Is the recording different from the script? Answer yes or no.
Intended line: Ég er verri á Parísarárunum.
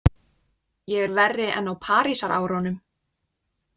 yes